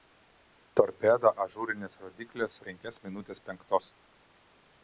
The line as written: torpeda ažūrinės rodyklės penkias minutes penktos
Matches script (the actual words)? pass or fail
pass